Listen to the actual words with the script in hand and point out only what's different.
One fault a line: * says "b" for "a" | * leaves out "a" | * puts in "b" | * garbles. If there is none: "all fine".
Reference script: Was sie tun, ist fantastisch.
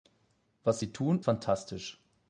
* leaves out "ist"